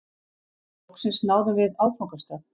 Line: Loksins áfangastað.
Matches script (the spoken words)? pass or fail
fail